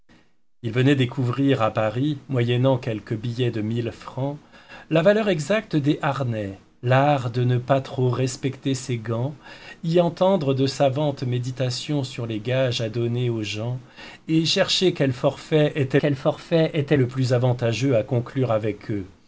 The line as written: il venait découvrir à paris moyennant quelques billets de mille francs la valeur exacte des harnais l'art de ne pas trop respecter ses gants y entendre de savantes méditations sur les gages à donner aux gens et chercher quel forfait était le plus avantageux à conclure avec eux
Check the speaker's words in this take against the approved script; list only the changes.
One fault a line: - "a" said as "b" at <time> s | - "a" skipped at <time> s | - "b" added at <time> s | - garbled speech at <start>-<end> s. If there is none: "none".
- "quel forfait était" added at 16.0 s